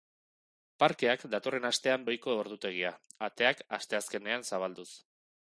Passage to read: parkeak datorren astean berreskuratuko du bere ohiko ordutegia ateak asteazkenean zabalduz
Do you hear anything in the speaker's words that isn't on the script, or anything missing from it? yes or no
yes